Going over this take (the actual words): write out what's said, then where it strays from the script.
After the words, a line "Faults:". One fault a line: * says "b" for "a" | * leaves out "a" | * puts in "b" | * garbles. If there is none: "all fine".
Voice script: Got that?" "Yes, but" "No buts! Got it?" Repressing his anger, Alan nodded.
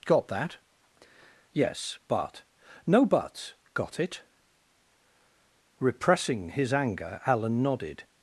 Got that?" "Yes, but" "No buts! Got it?" Repressing his anger, Alan nodded.
Faults:
all fine